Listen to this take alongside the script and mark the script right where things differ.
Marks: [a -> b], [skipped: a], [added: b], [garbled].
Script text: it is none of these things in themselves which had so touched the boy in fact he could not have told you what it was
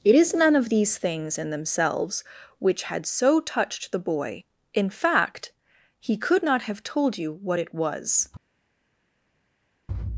it is none of these things in themselves which had so touched the boy in fact he could not have told you what it was